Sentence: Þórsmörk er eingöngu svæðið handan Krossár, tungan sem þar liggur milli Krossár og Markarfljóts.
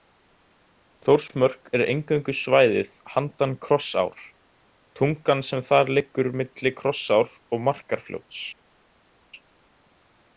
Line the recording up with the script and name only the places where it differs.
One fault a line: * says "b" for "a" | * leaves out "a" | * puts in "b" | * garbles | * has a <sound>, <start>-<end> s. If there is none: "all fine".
all fine